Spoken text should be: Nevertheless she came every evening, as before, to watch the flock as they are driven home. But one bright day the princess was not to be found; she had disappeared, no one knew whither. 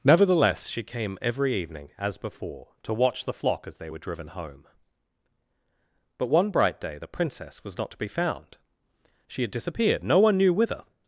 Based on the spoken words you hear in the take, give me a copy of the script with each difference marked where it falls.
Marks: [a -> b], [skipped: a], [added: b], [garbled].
Nevertheless she came every evening, as before, to watch the flock as they [are -> were] driven home. But one bright day the princess was not to be found; she had disappeared, no one knew whither.